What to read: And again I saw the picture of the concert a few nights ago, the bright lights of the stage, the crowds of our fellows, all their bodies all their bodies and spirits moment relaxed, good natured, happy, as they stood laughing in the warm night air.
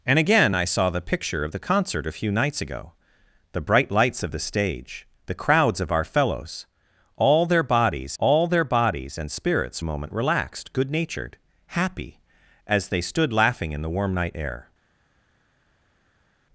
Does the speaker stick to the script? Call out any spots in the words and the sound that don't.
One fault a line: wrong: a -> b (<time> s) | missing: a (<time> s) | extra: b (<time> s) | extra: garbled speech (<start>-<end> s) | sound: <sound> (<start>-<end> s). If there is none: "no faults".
no faults